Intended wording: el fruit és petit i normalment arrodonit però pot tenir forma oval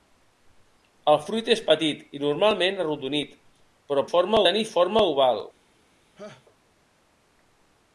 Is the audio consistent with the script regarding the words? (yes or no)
no